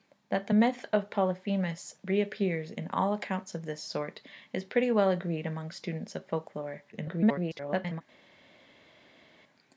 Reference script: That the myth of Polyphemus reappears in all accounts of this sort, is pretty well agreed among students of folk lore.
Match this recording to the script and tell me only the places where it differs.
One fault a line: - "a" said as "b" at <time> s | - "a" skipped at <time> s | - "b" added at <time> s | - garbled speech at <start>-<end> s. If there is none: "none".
- garbled speech at 6.9-8.0 s